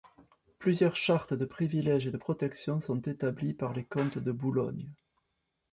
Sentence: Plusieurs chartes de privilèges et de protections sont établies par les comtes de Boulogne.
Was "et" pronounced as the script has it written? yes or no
yes